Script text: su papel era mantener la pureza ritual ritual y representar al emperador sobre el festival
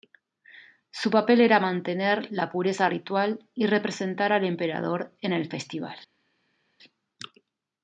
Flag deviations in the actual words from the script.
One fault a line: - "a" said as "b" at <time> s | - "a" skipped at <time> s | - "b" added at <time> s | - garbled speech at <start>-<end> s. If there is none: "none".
- "ritual" skipped at 3.5 s
- "sobre" said as "en" at 5.2 s